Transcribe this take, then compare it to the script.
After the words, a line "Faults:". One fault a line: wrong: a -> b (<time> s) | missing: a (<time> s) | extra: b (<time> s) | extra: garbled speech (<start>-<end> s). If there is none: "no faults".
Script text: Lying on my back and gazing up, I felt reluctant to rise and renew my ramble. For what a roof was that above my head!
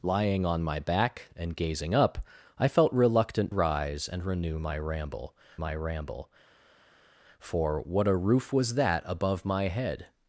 Lying on my back and gazing up, I felt reluctant rise and renew my ramble my ramble. For what a roof was that above my head!
Faults:
missing: to (3.5 s)
extra: my ramble (5.6 s)